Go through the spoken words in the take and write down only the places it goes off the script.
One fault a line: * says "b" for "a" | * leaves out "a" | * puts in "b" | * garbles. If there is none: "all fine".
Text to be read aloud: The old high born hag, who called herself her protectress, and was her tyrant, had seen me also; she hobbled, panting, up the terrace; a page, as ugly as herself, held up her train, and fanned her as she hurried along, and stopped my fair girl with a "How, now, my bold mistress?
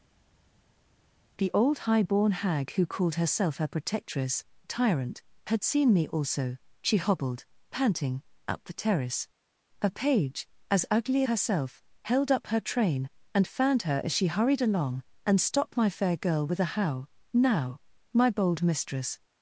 * leaves out "and was her"
* leaves out "as"